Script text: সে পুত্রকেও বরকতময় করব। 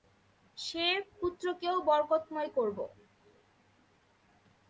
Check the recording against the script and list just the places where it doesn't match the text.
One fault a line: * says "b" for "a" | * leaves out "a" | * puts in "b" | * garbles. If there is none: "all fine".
all fine